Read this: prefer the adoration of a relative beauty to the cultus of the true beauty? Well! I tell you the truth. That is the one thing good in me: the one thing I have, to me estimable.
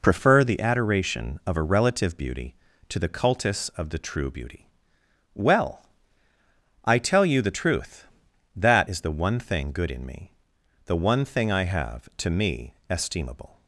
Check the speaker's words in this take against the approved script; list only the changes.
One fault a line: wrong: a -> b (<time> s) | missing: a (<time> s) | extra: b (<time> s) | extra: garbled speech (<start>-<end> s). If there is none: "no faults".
no faults